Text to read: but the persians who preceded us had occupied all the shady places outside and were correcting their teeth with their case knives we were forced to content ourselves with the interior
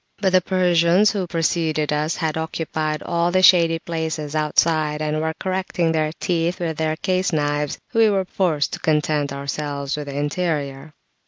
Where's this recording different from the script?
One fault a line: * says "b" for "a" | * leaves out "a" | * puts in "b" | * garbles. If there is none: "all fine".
all fine